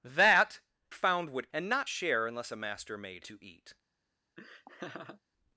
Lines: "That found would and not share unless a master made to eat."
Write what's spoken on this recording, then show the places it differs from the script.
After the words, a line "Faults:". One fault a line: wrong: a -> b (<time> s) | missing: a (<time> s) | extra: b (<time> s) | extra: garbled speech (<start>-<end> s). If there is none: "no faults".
"That found would and not share unless a master made to eat."
Faults:
no faults